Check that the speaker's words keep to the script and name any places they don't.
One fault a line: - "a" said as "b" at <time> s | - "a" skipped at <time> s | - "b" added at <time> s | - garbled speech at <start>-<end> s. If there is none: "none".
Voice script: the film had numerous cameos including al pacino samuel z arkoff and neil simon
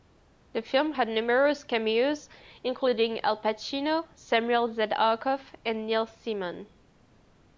none